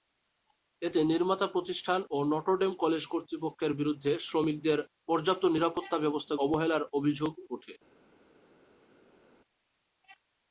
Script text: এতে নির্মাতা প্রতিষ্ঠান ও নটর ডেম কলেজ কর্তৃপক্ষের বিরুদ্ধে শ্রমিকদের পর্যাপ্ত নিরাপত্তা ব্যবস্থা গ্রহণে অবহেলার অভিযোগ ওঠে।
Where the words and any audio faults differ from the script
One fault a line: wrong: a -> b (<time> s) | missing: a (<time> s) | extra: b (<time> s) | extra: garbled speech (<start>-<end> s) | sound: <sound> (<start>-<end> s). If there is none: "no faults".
missing: গ্রহণে (6.3 s)